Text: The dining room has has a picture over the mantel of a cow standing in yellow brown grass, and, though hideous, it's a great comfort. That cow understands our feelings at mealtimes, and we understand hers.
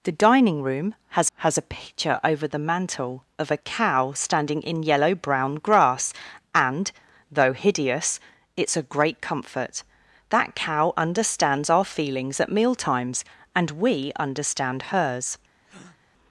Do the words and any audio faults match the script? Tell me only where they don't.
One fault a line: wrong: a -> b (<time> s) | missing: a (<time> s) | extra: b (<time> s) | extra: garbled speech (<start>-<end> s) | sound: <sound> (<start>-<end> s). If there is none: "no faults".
sound: breath (15.6-16.0 s)